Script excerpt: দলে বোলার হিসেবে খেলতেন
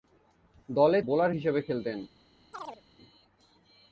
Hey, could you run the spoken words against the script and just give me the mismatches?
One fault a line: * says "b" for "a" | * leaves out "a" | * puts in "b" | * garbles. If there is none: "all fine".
all fine